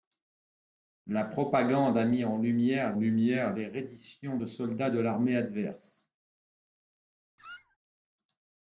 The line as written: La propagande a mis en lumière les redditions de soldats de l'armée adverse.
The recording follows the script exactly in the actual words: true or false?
false